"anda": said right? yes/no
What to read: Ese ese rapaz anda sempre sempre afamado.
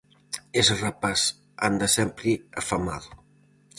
yes